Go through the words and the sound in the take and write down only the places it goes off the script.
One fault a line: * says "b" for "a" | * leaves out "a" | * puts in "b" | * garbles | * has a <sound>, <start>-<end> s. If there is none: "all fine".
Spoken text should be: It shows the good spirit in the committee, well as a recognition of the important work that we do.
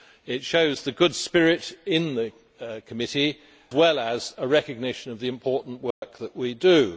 * has a dropout, 5.9-6.0 s